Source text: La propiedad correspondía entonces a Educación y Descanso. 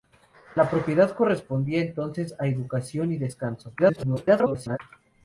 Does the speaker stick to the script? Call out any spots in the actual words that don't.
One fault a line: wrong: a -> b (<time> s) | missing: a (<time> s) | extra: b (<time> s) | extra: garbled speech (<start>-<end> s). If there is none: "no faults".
extra: garbled speech (3.8-4.8 s)